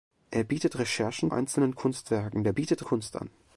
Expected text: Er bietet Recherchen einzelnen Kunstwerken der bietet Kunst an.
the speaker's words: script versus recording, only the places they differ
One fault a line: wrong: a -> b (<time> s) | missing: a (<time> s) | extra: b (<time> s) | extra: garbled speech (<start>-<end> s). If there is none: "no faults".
no faults